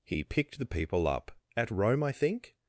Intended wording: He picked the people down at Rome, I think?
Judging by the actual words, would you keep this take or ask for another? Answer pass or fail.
fail